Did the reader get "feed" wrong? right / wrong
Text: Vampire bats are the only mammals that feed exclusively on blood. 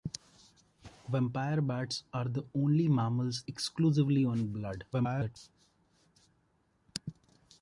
wrong